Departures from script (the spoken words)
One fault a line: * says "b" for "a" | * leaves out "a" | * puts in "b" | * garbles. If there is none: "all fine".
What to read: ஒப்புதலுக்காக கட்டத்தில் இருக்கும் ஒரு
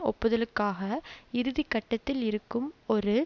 * puts in "இறுதி"